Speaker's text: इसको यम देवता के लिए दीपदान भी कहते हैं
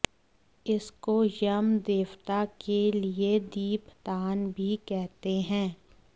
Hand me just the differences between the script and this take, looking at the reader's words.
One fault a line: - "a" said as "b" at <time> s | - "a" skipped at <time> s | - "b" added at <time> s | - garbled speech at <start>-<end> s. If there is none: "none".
none